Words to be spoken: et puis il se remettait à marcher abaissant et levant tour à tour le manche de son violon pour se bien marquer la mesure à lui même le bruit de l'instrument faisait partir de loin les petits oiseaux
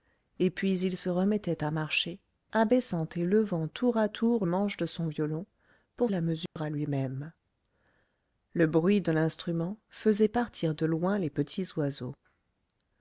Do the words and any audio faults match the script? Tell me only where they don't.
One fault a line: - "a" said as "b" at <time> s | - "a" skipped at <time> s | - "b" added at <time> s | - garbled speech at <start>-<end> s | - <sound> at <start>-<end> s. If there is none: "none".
- "le" skipped at 4.5 s
- "se bien marquer" skipped at 6.1 s
- dropout at 6.5-6.6 s